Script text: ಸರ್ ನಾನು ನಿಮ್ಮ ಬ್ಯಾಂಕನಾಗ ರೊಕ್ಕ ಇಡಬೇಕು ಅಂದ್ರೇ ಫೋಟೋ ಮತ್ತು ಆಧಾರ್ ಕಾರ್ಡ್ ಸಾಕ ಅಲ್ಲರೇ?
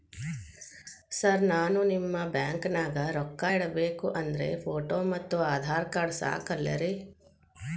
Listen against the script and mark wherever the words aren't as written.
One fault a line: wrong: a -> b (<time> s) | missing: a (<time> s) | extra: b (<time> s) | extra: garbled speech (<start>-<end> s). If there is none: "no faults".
no faults